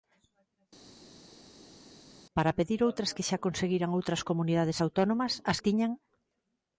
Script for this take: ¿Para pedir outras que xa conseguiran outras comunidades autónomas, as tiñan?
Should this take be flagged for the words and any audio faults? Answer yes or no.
no